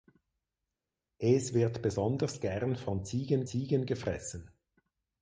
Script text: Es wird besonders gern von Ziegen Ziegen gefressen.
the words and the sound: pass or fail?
pass